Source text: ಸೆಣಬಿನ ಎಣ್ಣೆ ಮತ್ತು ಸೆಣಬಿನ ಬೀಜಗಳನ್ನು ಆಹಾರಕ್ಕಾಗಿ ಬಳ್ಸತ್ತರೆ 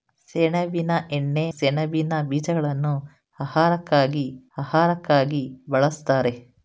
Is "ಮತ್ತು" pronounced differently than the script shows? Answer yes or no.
yes